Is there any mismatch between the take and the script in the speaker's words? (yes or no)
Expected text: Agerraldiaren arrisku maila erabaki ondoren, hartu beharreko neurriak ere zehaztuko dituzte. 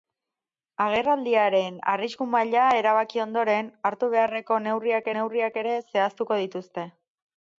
yes